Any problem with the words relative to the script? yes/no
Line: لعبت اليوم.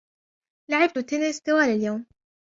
yes